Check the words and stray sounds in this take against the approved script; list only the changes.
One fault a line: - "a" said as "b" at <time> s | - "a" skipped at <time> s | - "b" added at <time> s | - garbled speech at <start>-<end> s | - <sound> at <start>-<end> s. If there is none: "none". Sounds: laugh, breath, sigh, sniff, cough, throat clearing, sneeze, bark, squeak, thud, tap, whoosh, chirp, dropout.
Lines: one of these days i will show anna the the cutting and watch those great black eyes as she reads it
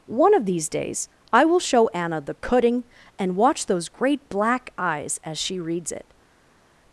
- "the" skipped at 2.3 s